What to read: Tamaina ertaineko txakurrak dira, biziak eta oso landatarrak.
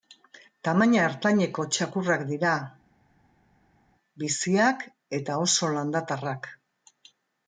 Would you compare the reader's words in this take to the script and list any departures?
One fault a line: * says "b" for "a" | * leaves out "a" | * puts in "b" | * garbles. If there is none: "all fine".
all fine